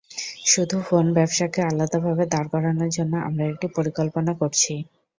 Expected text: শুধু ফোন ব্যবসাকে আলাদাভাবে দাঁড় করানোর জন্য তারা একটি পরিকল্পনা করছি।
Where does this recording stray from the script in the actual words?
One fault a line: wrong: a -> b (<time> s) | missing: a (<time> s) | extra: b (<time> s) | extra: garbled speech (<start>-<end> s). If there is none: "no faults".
wrong: তারা -> আমরা (3.3 s)